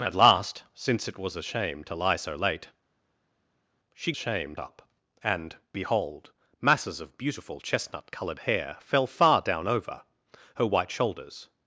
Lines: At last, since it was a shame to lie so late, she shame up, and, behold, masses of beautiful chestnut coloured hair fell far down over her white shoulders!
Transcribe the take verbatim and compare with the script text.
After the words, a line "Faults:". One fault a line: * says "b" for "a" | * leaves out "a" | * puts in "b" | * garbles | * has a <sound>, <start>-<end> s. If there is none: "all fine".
At last, since it was a shame to lie so late, she shame up, and, behold, masses of beautiful chestnut coloured hair fell far down over her white shoulders!
Faults:
all fine